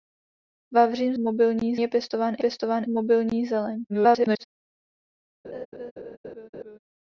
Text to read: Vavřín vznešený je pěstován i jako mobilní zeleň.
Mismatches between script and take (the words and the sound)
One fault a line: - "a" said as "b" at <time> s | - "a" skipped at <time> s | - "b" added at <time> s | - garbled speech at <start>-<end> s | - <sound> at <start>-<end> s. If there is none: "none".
- "vznešený" said as "mobilní" at 1.2 s
- "jako" said as "pěstován" at 2.4 s
- garbled speech at 3.9-4.4 s
- laugh at 5.4-6.8 s